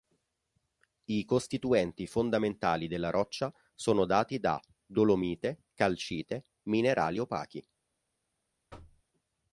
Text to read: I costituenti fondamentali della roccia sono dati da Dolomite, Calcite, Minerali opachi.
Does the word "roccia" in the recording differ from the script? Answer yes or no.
no